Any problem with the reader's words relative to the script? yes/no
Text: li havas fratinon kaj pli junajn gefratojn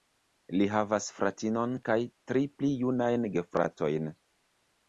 yes